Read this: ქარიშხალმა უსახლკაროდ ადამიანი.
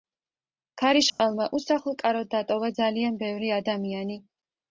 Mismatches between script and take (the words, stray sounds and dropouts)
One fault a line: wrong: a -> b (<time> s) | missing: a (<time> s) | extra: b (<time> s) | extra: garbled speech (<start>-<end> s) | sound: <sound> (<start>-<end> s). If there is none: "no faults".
sound: dropout (1.1-1.2 s)
extra: დატოვა ძალიან ბევრი (2.4 s)